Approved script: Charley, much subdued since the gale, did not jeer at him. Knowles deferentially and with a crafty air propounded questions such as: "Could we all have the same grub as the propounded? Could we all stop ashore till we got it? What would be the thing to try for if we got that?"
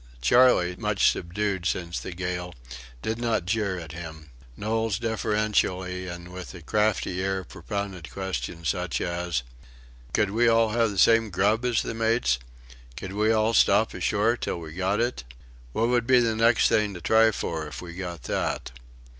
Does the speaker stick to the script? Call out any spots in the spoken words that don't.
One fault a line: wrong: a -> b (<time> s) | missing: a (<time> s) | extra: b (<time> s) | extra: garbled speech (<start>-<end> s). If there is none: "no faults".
wrong: propounded -> mates (11.9 s)
extra: next (16.4 s)